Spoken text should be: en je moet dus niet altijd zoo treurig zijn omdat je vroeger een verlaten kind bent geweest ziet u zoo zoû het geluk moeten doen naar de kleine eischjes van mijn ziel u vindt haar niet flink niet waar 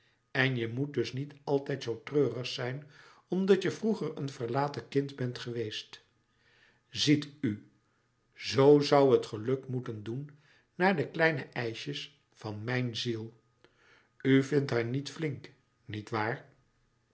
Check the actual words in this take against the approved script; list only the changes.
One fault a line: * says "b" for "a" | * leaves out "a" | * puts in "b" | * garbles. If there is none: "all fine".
all fine